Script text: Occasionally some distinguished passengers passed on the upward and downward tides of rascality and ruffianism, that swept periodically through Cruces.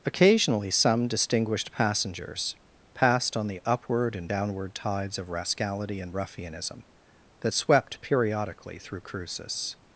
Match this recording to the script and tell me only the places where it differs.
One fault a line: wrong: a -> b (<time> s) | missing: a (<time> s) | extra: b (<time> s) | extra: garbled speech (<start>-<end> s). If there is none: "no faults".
no faults